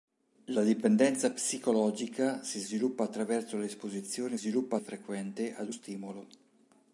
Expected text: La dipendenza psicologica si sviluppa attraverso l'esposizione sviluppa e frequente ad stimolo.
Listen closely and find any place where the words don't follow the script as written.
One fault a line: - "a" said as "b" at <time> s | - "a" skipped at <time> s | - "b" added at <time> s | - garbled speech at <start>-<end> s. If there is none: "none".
none